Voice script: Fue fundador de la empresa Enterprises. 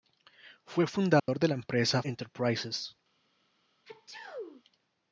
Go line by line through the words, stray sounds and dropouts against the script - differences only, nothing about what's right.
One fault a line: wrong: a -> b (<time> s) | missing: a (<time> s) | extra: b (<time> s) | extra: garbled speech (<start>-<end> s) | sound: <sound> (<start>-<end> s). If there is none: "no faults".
sound: dropout (1.2-1.3 s)
sound: sneeze (3.8-4.6 s)